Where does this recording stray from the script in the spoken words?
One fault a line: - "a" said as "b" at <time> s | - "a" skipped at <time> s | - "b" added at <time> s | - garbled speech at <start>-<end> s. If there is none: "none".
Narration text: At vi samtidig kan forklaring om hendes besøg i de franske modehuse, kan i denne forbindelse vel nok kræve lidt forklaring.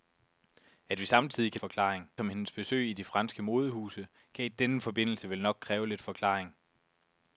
none